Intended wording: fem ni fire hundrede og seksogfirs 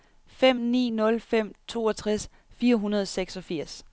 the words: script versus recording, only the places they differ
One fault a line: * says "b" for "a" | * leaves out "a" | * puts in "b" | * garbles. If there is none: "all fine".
* puts in "nul fem toogtres"